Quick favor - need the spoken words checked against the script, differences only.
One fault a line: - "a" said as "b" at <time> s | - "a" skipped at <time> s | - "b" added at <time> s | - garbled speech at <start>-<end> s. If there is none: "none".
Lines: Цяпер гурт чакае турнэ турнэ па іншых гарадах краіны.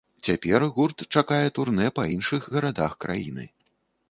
- "турнэ" skipped at 1.9 s